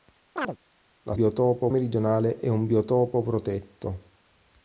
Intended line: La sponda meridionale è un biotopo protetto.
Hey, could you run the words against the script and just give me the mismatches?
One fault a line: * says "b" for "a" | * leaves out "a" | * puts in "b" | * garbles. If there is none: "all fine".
* says "biotopo" for "sponda"